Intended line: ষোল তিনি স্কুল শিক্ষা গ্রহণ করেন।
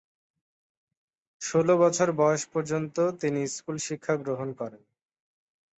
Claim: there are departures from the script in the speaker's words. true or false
true